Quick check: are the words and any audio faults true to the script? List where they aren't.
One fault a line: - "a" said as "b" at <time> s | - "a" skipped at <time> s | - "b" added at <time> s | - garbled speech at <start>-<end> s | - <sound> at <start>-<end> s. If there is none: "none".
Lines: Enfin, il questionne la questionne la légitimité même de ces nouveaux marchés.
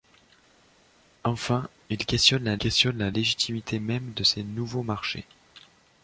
none